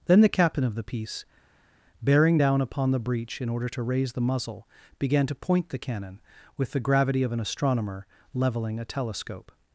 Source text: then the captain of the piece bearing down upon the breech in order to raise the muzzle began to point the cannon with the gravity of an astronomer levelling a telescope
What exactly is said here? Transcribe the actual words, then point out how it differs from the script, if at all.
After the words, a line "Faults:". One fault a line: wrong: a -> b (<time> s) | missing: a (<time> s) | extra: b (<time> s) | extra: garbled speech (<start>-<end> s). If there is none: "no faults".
then the captain of the piece bearing down upon the breech in order to raise the muzzle began to point the cannon with the gravity of an astronomer levelling a telescope
Faults:
no faults